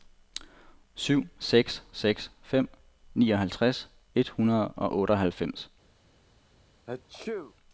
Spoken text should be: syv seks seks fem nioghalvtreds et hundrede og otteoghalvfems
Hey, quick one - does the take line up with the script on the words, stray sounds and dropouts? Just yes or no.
no